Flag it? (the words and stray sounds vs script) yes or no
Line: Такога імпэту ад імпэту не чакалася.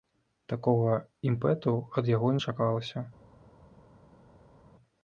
yes